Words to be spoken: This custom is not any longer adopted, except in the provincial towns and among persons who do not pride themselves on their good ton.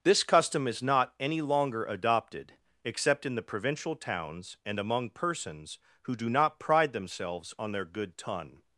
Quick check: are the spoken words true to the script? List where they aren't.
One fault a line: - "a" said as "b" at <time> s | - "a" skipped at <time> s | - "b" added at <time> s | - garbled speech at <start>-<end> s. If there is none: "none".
none